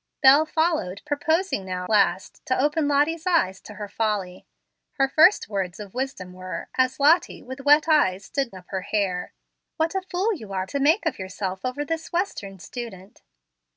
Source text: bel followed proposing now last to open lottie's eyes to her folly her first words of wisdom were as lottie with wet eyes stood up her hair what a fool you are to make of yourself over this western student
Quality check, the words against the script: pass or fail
pass